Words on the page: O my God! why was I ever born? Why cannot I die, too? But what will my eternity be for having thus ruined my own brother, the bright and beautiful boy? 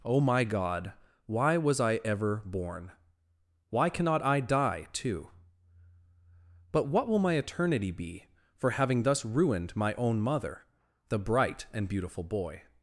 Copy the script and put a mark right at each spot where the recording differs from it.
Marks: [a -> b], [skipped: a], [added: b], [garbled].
O my God! why was I ever born? Why cannot I die, too? But what will my eternity be for having thus ruined my own [brother, -> mother] the bright and beautiful boy?